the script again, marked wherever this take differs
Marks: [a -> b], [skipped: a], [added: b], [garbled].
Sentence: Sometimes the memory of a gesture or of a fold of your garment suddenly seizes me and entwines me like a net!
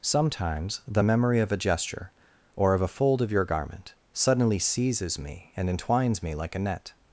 Sometimes the memory of a gesture or of a fold of your garment suddenly seizes me and entwines me like a net!